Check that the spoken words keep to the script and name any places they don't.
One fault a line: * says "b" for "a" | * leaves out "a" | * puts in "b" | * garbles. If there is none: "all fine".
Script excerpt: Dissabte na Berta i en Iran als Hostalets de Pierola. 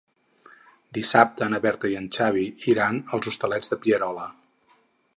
* puts in "Xavi"